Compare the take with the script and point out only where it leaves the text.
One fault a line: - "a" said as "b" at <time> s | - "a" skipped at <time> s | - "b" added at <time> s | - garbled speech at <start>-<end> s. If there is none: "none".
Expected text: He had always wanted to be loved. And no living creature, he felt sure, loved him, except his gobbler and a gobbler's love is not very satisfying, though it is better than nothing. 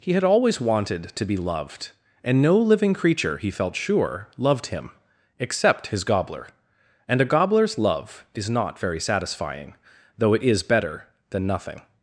none